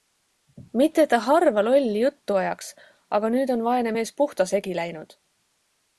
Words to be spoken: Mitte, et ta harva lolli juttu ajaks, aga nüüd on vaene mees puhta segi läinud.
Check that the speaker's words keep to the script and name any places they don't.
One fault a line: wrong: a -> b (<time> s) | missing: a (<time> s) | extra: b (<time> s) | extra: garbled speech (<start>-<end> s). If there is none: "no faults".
no faults